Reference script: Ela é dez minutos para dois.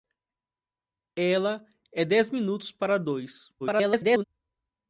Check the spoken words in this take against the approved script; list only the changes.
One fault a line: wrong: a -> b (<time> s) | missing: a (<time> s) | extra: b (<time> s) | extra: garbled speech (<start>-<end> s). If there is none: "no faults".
extra: garbled speech (3.6-4.2 s)